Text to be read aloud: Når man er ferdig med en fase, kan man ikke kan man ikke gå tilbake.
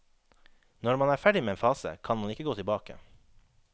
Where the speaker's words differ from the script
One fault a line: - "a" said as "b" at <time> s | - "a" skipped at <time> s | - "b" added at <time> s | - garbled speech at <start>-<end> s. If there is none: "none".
- "kan man ikke" skipped at 2.5 s